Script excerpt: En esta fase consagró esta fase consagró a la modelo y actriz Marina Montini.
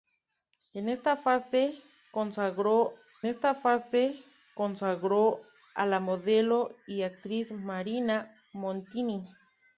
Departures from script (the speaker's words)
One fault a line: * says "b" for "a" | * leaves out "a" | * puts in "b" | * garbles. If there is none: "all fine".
all fine